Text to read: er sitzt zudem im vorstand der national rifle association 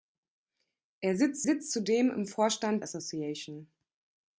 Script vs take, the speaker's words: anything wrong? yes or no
yes